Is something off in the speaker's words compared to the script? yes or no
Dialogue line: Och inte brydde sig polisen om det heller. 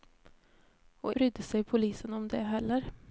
yes